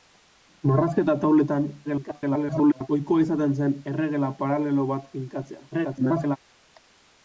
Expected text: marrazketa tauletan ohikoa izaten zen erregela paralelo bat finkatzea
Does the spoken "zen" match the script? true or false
true